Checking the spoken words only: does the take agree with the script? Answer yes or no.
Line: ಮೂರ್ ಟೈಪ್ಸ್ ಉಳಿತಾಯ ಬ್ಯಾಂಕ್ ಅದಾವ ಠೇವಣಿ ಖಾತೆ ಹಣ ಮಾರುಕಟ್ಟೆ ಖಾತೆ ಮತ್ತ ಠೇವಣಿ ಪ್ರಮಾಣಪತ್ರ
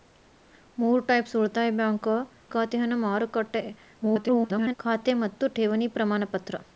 no